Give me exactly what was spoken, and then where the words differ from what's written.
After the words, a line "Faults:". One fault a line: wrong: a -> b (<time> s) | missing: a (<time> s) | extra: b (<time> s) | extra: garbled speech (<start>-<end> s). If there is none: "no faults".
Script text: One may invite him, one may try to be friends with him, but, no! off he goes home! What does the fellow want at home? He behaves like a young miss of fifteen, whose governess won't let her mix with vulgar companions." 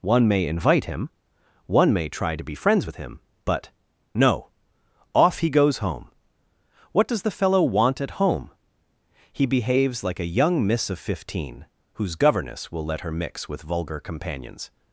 One may invite him, one may try to be friends with him, but, no! off he goes home! What does the fellow want at home? He behaves like a young miss of fifteen, whose governess will let her mix with vulgar companions."
Faults:
wrong: won't -> will (12.7 s)